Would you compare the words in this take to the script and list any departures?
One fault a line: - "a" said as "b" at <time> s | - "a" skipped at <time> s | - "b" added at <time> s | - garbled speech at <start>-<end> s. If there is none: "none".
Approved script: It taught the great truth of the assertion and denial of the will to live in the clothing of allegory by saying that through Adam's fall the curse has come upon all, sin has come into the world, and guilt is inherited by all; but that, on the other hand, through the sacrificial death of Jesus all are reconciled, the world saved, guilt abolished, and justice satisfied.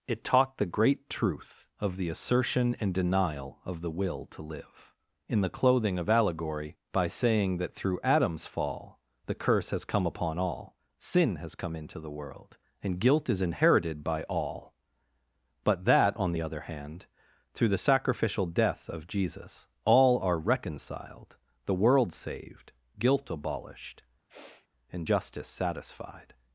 none